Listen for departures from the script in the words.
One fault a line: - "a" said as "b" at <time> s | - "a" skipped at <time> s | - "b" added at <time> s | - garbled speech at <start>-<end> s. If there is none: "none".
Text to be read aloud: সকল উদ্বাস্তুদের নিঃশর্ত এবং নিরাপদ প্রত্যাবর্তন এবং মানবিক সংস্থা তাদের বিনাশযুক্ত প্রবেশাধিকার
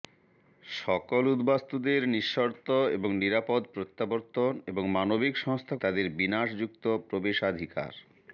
none